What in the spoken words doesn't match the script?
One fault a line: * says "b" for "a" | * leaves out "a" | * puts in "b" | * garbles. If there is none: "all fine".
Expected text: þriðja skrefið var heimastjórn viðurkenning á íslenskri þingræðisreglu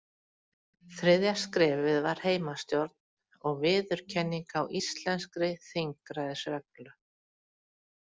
* puts in "og"